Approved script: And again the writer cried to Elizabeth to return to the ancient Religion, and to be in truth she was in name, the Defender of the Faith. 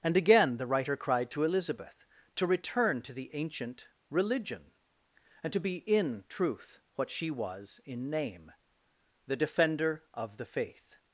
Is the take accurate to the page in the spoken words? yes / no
no